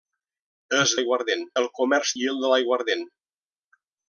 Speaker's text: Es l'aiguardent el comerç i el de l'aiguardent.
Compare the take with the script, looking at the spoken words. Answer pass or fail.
pass